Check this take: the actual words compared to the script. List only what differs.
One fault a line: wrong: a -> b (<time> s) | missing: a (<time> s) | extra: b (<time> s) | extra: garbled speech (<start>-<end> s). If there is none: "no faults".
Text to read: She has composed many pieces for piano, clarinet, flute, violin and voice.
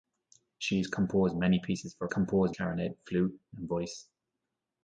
wrong: piano -> composed (2.1 s)
missing: violin (3.4 s)